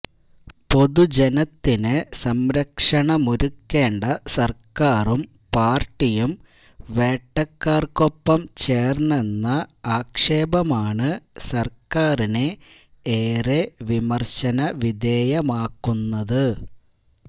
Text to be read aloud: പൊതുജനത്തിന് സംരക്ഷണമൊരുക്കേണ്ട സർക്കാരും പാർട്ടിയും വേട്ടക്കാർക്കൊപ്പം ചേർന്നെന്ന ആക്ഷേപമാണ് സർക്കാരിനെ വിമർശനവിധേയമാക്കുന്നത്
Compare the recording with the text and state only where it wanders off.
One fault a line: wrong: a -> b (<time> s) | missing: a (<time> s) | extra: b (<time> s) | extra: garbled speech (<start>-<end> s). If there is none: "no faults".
extra: ഏറെ (13.2 s)